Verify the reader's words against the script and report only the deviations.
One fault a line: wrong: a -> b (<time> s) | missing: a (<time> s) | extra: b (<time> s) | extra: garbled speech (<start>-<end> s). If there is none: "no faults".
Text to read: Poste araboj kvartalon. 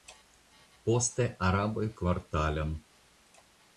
no faults